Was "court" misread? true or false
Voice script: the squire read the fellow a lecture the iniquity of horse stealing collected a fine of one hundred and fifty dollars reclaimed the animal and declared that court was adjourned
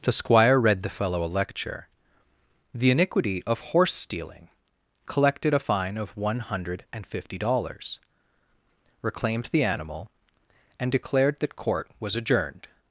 false